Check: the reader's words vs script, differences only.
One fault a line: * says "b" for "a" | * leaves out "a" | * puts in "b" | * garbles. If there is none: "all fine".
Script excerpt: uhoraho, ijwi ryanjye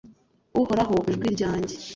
all fine